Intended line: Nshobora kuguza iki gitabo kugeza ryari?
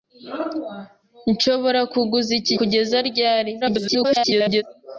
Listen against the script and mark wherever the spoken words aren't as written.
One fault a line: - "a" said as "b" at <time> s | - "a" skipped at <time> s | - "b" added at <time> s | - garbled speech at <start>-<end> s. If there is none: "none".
- "gitabo" skipped at 2.5 s
- garbled speech at 3.6-4.6 s